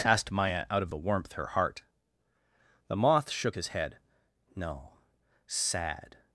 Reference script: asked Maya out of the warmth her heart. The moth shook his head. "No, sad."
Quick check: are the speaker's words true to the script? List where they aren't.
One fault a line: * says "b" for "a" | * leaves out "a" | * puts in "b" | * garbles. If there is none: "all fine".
all fine